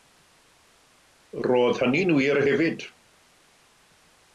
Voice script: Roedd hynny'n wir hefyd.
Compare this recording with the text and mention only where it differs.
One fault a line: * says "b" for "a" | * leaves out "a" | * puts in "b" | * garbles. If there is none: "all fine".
all fine